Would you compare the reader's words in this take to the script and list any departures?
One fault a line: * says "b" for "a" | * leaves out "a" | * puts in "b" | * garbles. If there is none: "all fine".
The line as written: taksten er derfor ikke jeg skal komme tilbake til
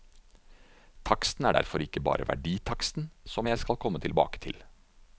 * puts in "bare verditaksten som"